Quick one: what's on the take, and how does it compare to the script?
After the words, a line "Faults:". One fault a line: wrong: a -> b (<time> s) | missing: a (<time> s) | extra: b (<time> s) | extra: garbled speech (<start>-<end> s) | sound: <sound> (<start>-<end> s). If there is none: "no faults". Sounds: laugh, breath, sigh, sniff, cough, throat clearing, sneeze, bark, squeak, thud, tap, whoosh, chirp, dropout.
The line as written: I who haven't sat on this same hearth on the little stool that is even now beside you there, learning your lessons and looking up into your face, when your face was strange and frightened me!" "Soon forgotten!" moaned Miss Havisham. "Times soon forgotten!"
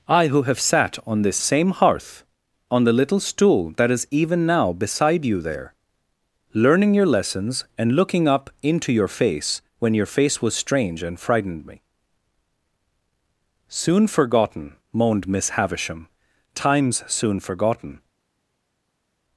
I who have sat on this same hearth on the little stool that is even now beside you there, learning your lessons and looking up into your face, when your face was strange and frightened me!" "Soon forgotten!" moaned Miss Havisham. "Times soon forgotten!"
Faults:
wrong: haven't -> have (0.4 s)